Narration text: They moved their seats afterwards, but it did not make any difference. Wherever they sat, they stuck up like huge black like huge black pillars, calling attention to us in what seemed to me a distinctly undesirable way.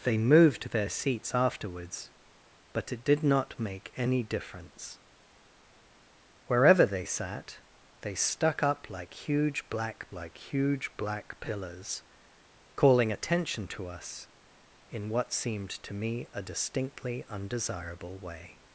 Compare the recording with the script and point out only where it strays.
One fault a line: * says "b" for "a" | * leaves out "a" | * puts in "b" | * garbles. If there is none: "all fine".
all fine